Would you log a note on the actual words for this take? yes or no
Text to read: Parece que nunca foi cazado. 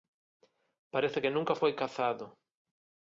no